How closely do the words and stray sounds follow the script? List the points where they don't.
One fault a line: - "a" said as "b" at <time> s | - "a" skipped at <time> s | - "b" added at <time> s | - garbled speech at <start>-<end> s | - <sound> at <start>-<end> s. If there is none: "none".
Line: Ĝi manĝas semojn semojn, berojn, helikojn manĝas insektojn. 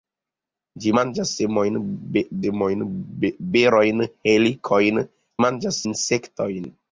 none